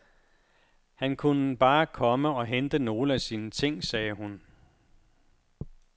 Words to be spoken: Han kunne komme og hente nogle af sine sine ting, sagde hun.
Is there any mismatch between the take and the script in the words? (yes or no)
yes